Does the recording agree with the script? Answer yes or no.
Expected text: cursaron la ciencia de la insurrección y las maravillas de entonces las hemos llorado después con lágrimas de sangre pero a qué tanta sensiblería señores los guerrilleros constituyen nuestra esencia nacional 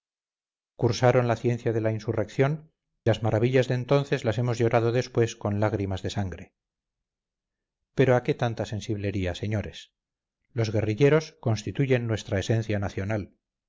no